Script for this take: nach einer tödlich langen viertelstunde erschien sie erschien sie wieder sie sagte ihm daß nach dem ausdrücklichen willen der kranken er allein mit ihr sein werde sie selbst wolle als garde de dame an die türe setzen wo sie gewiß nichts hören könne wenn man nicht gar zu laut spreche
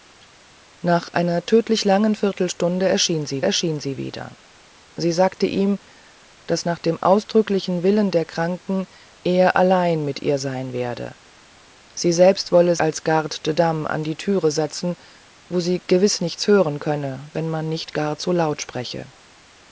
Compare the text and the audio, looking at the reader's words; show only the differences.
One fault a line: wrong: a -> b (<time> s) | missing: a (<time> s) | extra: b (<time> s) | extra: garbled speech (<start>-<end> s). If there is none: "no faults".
no faults